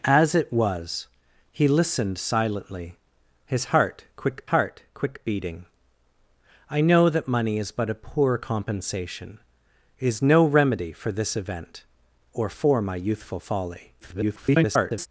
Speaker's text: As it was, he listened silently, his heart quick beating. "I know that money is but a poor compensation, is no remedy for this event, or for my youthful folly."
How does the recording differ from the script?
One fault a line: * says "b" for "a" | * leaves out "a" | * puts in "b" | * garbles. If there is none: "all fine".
* puts in "heart quick"
* garbles